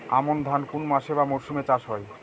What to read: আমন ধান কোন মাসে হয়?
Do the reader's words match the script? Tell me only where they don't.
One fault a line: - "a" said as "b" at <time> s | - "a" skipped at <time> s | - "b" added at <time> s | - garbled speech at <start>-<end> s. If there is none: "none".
- "বা মরশুমে চাষ" added at 1.1 s